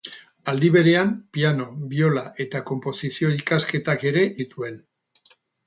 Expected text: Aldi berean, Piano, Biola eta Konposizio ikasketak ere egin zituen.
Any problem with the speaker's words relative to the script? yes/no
yes